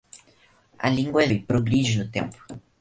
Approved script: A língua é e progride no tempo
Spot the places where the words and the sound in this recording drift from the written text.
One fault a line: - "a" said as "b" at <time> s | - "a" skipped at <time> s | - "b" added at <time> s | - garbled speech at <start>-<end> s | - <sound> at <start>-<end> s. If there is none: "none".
none